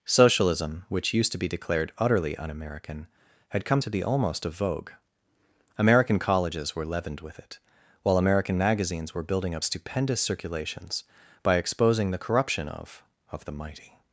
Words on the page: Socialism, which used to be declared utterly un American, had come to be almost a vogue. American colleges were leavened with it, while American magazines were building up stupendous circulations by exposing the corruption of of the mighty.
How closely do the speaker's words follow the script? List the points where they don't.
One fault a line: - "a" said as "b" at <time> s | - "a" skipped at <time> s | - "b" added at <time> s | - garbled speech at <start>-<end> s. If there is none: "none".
none